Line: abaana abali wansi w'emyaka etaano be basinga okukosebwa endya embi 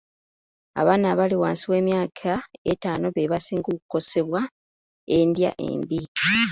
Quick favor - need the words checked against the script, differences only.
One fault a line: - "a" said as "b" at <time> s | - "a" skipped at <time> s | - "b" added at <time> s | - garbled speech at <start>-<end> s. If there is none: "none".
none